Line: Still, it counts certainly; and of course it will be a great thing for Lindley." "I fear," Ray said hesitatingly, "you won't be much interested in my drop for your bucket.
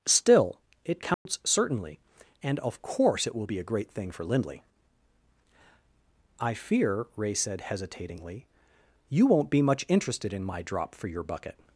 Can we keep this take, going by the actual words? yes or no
yes